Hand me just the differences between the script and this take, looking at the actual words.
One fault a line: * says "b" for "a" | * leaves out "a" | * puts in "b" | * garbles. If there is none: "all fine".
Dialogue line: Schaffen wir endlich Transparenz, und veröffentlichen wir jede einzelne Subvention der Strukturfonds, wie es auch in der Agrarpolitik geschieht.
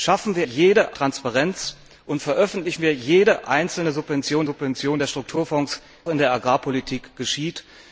* says "jede" for "endlich"
* puts in "Subvention"
* leaves out "wie es auch"